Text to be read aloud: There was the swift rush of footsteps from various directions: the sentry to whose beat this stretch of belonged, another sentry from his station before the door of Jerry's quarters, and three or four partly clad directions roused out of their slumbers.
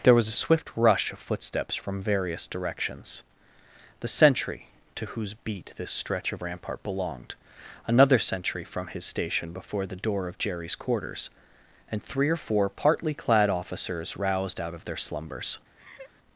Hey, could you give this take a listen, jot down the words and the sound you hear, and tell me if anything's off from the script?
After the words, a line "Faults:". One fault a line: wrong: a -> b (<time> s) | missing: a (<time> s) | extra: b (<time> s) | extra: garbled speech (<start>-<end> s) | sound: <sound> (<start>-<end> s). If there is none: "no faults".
There was a swift rush of footsteps from various directions: the sentry to whose beat this stretch of rampart belonged, another sentry from his station before the door of Jerry's quarters, and three or four partly clad officers roused out of their slumbers.
Faults:
wrong: the -> a (0.3 s)
extra: rampart (6.4 s)
wrong: directions -> officers (13.5 s)
sound: laugh (15.8-16.1 s)